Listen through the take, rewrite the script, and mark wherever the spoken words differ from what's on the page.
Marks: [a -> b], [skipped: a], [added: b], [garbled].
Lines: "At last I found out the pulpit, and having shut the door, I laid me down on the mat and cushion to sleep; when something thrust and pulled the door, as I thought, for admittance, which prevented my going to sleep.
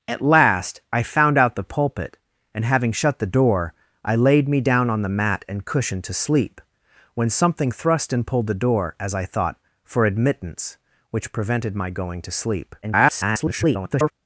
"At last I found out the pulpit, and having shut the door, I laid me down on the mat and cushion to sleep; when something thrust and pulled the door, as I thought, for admittance, which prevented my going to sleep. [garbled]